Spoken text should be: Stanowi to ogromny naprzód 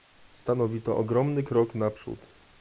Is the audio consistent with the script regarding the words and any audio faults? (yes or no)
no